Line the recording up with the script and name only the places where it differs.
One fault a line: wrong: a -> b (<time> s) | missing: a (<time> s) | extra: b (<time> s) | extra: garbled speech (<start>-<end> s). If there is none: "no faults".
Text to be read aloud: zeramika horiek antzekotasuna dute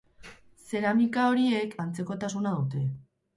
no faults